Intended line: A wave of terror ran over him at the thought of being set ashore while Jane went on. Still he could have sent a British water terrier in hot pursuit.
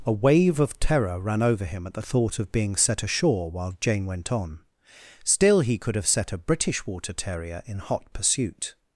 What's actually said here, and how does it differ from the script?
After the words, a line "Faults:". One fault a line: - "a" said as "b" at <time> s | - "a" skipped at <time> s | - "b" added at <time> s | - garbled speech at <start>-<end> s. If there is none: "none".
A wave of terror ran over him at the thought of being set ashore while Jane went on. Still he could have set a British water terrier in hot pursuit.
Faults:
- "sent" said as "set" at 6.1 s